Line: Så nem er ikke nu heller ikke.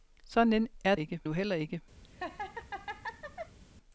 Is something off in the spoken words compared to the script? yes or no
no